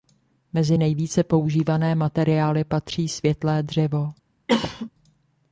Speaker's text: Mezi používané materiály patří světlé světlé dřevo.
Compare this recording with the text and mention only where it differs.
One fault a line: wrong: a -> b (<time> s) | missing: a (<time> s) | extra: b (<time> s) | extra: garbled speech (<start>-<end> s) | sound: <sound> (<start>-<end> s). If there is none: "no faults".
extra: nejvíce (0.8 s)
missing: světlé (3.6 s)
sound: cough (4.5-4.9 s)